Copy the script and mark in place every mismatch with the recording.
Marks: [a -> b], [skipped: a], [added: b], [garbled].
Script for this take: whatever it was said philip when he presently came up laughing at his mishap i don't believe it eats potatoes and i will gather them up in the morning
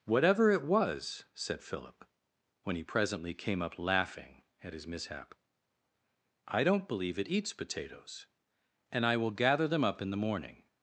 whatever it was said philip when he presently came up laughing at his mishap i don't believe it eats potatoes and i will gather them up in the morning